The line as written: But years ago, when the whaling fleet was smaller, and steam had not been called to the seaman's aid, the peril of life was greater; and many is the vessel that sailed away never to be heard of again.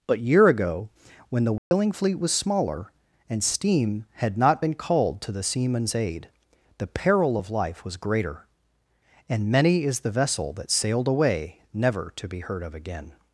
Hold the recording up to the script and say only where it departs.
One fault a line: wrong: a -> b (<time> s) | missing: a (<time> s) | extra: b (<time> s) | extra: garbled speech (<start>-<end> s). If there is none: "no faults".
wrong: years -> year (0.2 s)